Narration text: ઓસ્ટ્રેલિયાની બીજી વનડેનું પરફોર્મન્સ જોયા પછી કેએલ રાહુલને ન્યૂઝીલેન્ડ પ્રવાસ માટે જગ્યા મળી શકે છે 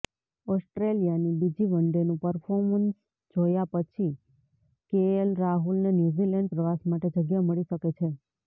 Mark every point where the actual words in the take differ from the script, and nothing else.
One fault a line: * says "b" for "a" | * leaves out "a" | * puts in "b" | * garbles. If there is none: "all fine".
all fine